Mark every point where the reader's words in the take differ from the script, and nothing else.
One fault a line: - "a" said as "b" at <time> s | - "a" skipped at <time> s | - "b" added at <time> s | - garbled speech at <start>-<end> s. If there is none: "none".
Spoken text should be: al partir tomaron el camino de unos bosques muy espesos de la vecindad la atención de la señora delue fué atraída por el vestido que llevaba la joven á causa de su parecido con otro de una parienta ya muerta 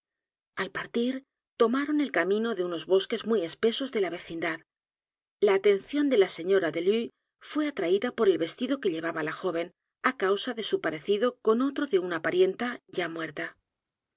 none